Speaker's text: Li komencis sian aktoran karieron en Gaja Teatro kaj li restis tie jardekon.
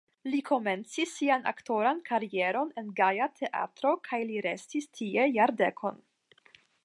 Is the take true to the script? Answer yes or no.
yes